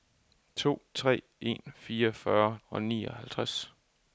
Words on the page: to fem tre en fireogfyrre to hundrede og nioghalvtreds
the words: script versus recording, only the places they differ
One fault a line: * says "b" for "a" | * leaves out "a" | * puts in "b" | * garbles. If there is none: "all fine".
* leaves out "fem"
* leaves out "to hundrede"